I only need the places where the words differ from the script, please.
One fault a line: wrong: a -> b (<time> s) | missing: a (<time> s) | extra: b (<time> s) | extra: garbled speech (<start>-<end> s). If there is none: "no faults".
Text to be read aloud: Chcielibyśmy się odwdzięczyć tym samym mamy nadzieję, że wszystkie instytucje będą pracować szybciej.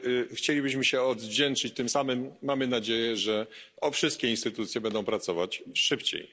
no faults